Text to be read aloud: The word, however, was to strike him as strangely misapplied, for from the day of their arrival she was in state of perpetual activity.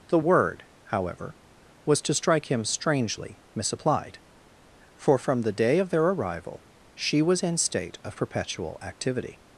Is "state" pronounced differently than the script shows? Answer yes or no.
no